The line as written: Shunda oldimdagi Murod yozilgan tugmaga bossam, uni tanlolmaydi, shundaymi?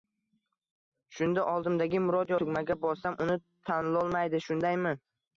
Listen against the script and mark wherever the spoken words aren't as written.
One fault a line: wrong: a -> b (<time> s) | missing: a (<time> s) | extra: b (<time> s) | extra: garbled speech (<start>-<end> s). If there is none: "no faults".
missing: yozilgan (2.4 s)